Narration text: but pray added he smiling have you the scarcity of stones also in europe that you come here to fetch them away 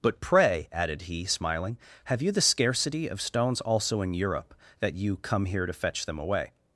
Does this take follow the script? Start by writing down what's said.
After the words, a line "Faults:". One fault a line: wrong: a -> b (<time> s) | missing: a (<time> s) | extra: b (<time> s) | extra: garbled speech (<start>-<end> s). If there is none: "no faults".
but pray added he smiling have you the scarcity of stones also in europe that you come here to fetch them away
Faults:
no faults